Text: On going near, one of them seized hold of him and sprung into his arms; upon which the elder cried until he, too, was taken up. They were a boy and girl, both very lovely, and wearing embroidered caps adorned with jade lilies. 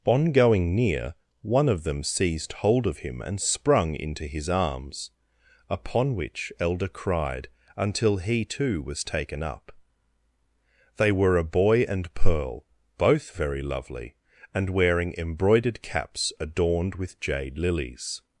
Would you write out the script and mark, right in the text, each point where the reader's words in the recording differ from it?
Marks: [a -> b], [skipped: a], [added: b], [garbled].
On going near, one of them seized hold of him and sprung into his arms; upon which [skipped: the] elder cried until he, too, was taken up. They were a boy and [girl, -> pearl] both very lovely, and wearing embroidered caps adorned with jade lilies.